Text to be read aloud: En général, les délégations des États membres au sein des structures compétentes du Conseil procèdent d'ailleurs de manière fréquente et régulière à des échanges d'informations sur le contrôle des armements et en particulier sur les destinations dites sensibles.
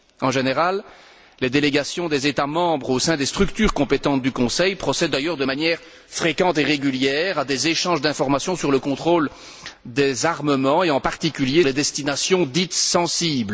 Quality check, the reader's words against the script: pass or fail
fail